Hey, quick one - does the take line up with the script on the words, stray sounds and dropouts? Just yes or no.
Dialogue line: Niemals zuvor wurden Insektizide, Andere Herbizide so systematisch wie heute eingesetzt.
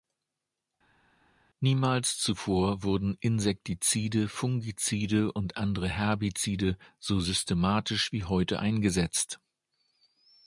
no